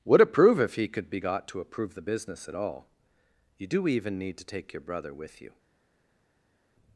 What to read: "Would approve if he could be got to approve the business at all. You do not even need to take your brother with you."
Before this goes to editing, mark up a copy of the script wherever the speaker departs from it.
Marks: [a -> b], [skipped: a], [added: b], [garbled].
"Would approve if he could be got to approve the business at all. You do [skipped: not] even need to take your brother with you."